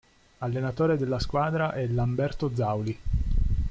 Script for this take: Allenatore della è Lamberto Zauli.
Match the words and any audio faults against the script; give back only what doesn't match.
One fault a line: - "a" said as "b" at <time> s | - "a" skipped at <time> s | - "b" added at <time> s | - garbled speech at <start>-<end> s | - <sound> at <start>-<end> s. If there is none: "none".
- "squadra" added at 1.2 s